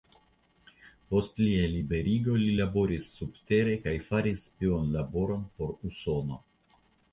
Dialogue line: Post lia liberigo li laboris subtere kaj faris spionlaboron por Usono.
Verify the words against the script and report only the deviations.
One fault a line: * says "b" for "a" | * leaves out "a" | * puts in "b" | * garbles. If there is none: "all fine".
all fine